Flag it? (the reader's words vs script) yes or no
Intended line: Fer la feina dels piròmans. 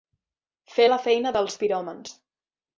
no